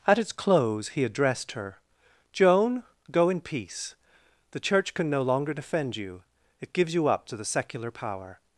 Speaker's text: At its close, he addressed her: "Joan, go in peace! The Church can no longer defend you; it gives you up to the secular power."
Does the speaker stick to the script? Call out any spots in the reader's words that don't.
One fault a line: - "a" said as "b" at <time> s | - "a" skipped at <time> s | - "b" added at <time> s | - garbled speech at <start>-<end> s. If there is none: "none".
none